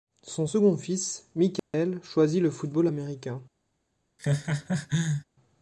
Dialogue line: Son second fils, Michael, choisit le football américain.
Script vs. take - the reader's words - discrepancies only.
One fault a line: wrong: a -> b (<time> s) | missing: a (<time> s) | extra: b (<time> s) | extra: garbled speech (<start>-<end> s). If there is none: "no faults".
no faults